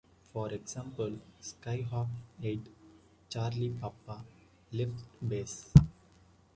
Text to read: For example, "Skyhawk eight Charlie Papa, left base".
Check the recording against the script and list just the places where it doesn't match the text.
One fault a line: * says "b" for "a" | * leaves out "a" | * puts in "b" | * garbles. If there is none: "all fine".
all fine